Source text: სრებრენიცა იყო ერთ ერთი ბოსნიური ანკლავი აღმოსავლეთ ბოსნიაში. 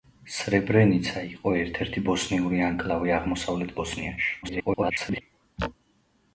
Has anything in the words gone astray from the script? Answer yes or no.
yes